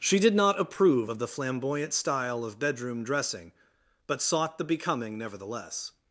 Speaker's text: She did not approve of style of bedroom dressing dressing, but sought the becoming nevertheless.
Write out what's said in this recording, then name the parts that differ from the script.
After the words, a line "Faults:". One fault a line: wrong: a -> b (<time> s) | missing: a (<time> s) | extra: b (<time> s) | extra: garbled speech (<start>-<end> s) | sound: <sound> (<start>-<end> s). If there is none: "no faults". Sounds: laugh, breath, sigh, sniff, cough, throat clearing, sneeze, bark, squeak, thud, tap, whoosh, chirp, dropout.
She did not approve of the flamboyant style of bedroom dressing, but sought the becoming nevertheless.
Faults:
extra: the flamboyant (1.2 s)
missing: dressing (3.5 s)